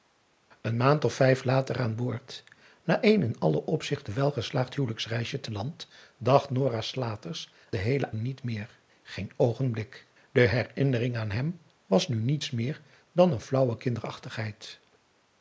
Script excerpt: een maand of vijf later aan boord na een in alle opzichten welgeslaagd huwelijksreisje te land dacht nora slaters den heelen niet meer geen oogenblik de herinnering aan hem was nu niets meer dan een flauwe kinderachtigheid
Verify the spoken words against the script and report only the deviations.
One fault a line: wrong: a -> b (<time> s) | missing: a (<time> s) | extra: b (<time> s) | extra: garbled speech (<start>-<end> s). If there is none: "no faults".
no faults